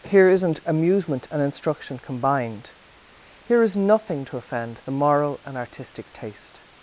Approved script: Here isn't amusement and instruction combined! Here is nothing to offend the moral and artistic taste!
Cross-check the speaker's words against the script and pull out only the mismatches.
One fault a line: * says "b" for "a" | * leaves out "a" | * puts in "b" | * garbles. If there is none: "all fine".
all fine